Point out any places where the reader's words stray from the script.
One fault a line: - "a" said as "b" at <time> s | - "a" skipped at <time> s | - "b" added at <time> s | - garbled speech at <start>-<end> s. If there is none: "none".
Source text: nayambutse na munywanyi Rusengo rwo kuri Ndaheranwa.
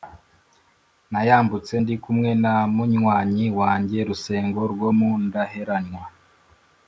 - "ndi kumwe" added at 1.8 s
- "wanjye" added at 3.6 s
- "kuri" said as "mu" at 5.0 s